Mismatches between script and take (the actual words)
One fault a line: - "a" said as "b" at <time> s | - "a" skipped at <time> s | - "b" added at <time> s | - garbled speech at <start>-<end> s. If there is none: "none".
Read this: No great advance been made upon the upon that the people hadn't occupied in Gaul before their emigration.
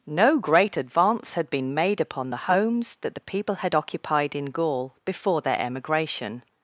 - "had" added at 1.4 s
- "upon" said as "homes" at 2.5 s
- "hadn't" said as "had" at 3.6 s